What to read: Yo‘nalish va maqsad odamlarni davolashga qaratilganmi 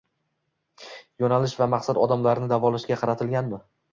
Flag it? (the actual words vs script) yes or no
no